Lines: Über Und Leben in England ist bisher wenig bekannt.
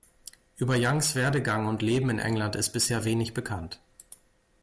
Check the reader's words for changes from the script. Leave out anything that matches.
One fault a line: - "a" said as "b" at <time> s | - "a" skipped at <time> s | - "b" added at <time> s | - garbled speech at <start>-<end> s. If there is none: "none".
- "Youngs Werdegang" added at 0.8 s